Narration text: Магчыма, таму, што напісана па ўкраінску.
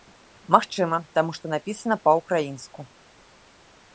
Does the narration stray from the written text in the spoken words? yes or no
no